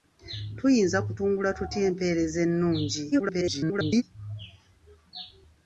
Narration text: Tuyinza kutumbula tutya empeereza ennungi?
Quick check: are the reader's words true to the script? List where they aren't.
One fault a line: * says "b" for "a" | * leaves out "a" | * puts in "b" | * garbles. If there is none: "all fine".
* garbles